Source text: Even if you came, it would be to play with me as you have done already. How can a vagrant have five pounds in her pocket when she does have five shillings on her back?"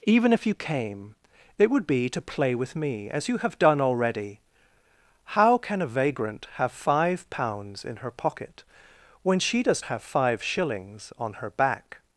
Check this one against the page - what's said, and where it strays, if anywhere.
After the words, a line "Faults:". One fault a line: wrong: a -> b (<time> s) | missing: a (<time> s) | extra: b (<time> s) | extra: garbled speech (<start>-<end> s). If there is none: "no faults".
Even if you came, it would be to play with me as you have done already. How can a vagrant have five pounds in her pocket when she does have five shillings on her back?"
Faults:
no faults